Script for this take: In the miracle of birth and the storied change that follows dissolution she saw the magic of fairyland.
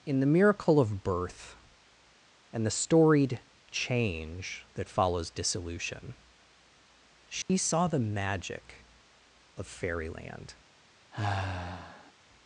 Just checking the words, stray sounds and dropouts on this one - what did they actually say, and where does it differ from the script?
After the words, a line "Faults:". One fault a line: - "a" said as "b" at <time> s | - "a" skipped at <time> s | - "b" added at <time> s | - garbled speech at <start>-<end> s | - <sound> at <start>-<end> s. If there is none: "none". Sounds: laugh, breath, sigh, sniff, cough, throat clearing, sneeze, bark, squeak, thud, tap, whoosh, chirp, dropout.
In the miracle of birth and the storied change that follows dissolution she saw the magic of fairyland.
Faults:
- dropout at 7.4-7.5 s
- sigh at 11.1-12.1 s